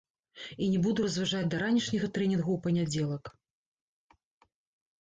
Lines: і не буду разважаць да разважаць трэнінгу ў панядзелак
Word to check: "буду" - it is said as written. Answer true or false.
true